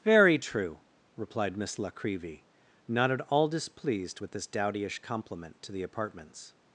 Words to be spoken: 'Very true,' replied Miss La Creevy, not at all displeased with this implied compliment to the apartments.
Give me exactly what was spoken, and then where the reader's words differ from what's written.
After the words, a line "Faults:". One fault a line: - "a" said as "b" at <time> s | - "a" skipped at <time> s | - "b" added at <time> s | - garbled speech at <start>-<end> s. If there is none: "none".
'Very true,' replied Miss La Creevy, not at all displeased with this dowdyish compliment to the apartments.
Faults:
- "implied" said as "dowdyish" at 4.5 s